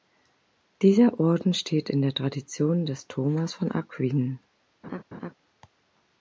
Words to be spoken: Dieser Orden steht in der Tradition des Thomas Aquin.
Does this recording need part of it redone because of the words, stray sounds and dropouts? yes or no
yes